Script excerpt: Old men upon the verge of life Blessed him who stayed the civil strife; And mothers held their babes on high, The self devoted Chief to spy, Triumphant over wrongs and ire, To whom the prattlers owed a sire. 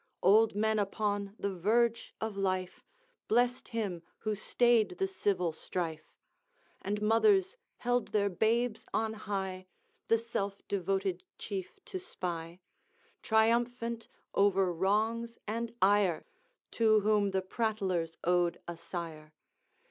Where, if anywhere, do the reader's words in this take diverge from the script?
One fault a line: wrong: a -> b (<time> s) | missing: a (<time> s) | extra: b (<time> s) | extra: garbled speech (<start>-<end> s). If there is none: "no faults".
no faults